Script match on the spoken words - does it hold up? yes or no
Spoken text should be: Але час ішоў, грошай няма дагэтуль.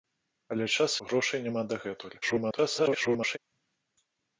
no